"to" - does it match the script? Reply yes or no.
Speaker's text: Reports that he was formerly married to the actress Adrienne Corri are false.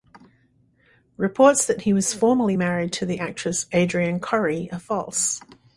yes